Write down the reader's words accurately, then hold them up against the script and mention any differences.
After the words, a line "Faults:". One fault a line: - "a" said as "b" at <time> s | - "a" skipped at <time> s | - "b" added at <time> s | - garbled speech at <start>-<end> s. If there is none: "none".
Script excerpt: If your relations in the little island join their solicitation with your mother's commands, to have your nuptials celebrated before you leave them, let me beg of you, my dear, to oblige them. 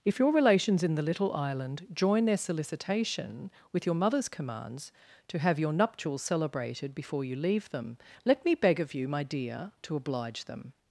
If your relations in the little island join their solicitation with your mother's commands, to have your nuptials celebrated before you leave them, let me beg of you, my dear, to oblige them.
Faults:
none